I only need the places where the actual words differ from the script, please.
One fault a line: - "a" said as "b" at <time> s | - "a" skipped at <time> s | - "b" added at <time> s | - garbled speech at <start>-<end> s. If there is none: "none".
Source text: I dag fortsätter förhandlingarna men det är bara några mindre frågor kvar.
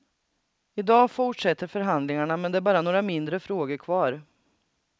none